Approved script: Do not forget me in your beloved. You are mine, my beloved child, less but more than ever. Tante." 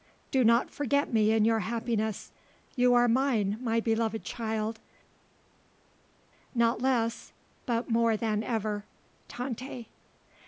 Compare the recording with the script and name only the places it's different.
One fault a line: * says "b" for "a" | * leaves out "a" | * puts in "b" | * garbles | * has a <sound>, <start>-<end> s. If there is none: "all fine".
* says "happiness" for "beloved"
* puts in "not"